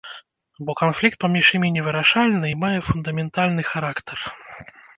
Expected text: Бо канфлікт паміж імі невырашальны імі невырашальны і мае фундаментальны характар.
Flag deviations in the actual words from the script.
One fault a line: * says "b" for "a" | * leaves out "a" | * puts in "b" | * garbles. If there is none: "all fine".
* leaves out "імі невырашальны"